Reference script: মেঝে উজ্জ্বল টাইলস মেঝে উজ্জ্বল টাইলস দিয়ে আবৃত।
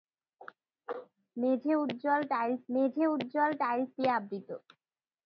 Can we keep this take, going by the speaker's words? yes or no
yes